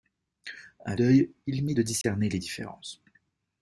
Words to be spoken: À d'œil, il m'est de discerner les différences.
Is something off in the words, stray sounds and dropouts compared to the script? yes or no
yes